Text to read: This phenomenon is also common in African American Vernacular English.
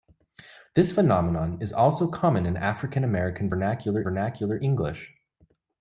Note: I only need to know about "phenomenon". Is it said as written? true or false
true